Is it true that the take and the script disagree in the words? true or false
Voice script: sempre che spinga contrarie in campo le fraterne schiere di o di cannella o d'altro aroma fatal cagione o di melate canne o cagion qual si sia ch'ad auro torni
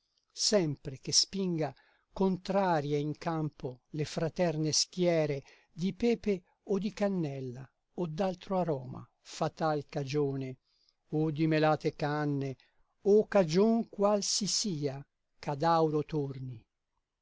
true